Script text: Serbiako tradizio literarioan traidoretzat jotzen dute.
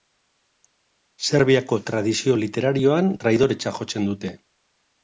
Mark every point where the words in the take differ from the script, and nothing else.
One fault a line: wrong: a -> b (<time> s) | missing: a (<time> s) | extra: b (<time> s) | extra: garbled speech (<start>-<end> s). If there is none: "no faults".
no faults